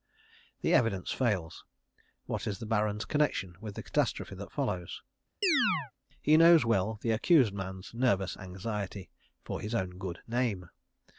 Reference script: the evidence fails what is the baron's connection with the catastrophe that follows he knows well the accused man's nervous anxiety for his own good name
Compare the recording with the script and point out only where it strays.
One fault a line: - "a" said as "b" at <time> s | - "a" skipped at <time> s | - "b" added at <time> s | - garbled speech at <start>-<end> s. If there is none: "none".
none